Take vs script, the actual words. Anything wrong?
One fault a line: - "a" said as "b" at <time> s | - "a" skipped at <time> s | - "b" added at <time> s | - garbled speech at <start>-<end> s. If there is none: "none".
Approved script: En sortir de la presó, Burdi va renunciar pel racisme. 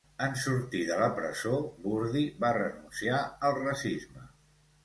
- "pel" said as "al" at 3.5 s